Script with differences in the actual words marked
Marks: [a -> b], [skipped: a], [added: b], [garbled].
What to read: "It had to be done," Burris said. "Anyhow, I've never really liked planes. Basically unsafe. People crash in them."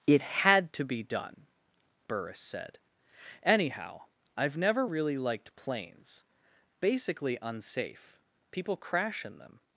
"It had to be done," Burris said. "Anyhow, I've never really liked planes. Basically unsafe. People crash in them."